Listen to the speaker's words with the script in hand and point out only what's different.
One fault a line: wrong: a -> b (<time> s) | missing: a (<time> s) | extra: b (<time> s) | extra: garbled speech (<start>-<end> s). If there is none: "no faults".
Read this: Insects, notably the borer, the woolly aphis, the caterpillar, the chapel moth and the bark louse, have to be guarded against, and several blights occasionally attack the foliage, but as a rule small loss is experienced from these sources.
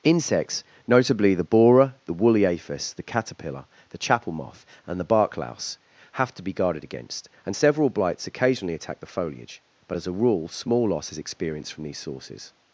no faults